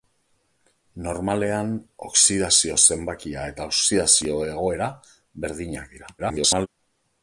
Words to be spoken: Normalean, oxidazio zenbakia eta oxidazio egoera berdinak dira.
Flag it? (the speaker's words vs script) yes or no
yes